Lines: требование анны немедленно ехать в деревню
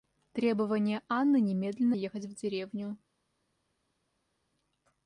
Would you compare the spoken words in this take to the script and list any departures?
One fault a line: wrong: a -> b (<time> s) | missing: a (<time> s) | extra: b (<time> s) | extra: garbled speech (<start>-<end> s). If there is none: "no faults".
no faults